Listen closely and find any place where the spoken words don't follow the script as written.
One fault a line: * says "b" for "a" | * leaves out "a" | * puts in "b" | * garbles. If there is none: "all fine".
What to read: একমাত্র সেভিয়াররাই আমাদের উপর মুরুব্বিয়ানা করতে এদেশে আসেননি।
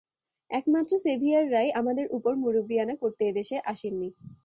all fine